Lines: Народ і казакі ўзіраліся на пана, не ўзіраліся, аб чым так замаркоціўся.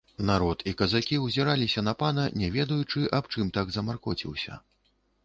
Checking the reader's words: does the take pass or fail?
fail